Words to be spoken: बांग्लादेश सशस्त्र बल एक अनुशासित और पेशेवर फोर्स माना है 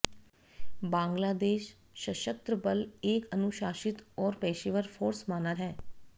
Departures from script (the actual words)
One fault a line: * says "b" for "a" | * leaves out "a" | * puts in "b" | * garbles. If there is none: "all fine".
all fine